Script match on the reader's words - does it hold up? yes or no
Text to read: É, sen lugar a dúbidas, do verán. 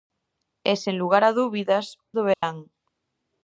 yes